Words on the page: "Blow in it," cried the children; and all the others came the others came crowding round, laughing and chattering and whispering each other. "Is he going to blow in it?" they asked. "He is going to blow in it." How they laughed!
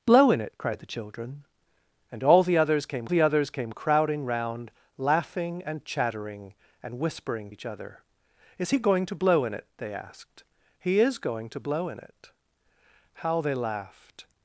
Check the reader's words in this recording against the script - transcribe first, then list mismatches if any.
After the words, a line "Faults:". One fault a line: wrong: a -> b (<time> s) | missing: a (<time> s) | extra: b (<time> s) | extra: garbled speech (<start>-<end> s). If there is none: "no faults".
"Blow in it," cried the children; and all the others came the others came crowding round, laughing and chattering and whispering each other. "Is he going to blow in it?" they asked. "He is going to blow in it." How they laughed!
Faults:
no faults